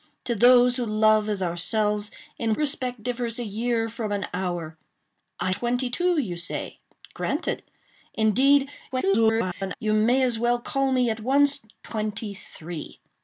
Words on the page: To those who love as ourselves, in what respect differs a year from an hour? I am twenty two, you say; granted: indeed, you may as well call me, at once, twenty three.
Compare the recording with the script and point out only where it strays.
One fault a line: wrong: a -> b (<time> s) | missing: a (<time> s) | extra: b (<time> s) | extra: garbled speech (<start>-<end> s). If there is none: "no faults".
missing: what (2.5 s)
missing: am (5.5 s)
extra: garbled speech (8.9-9.8 s)